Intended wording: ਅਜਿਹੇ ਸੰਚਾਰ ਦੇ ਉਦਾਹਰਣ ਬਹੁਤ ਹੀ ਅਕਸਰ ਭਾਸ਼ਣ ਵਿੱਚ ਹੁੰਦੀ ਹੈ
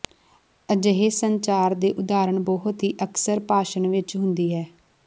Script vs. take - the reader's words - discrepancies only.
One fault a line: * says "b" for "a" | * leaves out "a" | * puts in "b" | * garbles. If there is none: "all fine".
all fine